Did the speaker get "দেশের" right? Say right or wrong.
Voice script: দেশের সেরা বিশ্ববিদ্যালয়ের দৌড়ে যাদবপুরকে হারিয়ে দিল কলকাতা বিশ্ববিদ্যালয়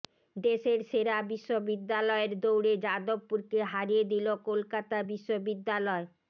right